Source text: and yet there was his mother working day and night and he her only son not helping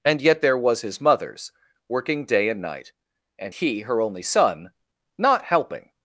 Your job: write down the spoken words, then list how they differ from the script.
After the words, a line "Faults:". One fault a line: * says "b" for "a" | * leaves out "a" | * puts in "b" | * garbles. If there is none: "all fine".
and yet there was his mothers working day and night and he her only son not helping
Faults:
* says "mothers" for "mother"